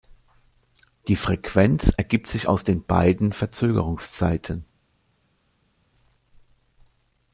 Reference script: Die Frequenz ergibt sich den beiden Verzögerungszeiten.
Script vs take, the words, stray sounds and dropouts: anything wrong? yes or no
yes